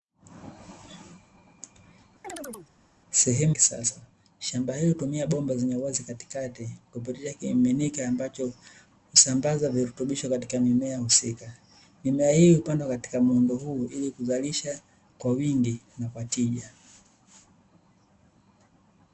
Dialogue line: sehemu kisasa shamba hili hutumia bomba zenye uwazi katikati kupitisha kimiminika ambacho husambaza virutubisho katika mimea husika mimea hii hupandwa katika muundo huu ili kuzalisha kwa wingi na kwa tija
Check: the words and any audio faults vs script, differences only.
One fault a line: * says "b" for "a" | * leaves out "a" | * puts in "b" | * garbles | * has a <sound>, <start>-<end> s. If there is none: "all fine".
* has a chirp, 2.2-2.7 s